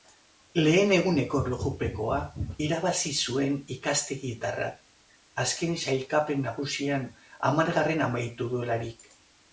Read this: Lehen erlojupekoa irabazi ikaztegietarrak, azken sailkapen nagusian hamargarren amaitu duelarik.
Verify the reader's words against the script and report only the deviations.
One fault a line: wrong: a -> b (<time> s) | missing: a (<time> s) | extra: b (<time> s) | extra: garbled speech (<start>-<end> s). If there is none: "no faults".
extra: eguneko (0.9 s)
extra: zuen (3.2 s)